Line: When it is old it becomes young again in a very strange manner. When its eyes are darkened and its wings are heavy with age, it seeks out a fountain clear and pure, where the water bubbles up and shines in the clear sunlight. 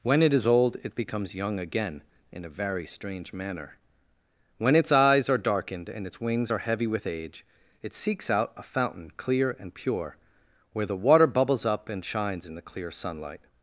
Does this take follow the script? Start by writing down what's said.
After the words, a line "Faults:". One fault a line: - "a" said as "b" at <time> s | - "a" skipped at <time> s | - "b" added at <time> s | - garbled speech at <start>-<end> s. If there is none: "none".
When it is old it becomes young again in a very strange manner. When its eyes are darkened and its wings are heavy with age, it seeks out a fountain clear and pure, where the water bubbles up and shines in the clear sunlight.
Faults:
none